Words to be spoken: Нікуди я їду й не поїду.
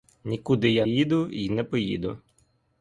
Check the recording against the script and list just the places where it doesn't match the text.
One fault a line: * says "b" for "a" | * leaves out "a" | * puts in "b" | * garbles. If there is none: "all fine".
all fine